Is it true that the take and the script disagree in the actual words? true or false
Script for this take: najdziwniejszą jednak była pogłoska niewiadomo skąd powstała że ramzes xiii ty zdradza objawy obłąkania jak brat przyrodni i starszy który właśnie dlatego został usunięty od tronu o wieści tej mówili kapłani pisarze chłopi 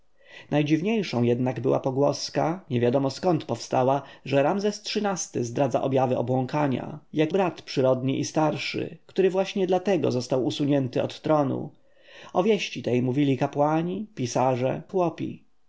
false